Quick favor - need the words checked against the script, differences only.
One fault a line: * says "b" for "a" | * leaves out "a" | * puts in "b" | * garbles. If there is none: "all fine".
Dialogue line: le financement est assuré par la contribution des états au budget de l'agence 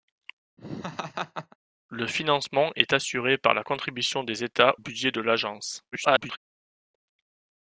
* leaves out "au"
* garbles